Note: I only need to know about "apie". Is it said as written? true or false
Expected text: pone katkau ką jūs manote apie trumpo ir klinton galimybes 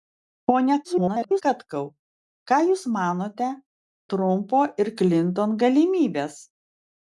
false